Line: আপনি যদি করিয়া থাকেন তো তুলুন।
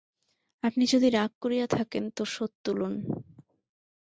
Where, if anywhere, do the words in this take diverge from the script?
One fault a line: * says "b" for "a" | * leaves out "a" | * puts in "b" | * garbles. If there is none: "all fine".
* puts in "রাগ"
* puts in "শোধ"